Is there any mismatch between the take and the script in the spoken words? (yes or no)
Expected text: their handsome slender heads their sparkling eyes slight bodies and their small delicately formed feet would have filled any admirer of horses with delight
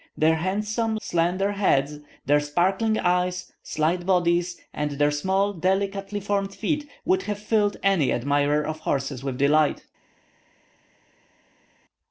no